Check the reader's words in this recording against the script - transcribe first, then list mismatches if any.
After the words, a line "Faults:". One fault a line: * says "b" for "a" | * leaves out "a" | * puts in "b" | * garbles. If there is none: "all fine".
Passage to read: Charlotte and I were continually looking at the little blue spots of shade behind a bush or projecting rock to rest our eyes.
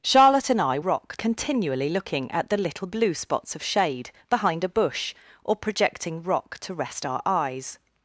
Charlotte and I rock continually looking at the little blue spots of shade behind a bush or projecting rock to rest our eyes.
Faults:
* says "rock" for "were"